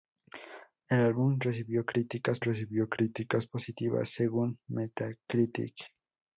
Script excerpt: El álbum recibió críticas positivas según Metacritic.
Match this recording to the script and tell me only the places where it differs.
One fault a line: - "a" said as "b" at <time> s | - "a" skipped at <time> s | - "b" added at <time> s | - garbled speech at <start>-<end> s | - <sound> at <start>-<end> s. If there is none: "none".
- "recibió críticas" added at 2.4 s